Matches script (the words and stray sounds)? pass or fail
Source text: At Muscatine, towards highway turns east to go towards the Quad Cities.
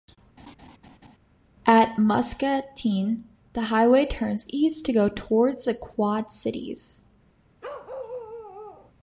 fail